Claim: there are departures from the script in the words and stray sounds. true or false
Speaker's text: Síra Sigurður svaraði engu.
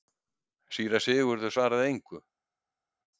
false